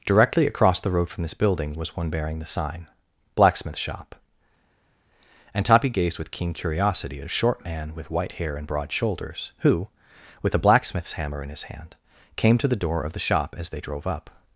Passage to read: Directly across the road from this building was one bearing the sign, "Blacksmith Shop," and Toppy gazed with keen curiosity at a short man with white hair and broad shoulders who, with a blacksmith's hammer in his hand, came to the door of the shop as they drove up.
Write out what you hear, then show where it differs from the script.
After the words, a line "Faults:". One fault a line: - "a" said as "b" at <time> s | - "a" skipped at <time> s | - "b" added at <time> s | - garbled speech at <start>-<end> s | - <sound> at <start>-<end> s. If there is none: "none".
Directly across the road from this building was one bearing the sign, "Blacksmith Shop," and Toppy gazed with keen curiosity at a short man with white hair and broad shoulders who, with a blacksmith's hammer in his hand, came to the door of the shop as they drove up.
Faults:
none